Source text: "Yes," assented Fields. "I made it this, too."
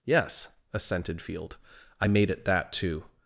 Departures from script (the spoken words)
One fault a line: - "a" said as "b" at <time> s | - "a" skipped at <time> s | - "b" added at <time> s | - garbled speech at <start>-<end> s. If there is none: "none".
- "Fields" said as "Field" at 1.2 s
- "this" said as "that" at 2.4 s